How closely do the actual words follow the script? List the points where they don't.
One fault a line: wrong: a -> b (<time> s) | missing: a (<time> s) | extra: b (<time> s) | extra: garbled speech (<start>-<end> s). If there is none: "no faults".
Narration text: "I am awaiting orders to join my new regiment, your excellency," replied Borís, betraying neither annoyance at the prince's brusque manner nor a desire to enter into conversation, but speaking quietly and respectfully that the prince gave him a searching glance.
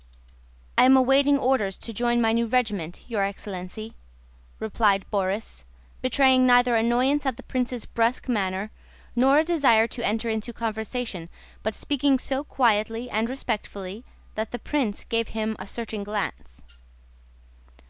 extra: so (12.2 s)